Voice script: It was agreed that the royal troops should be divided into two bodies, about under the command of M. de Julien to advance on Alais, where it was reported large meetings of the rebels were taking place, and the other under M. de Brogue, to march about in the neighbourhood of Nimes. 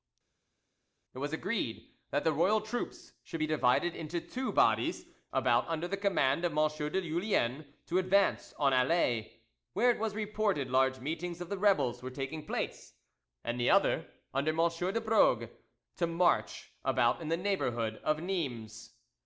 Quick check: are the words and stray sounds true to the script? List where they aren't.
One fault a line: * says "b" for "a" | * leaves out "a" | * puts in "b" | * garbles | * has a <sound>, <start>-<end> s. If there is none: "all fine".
all fine